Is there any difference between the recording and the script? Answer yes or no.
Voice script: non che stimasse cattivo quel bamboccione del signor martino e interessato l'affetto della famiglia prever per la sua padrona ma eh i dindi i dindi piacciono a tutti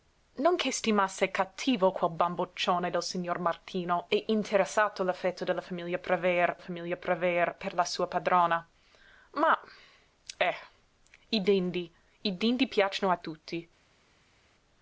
yes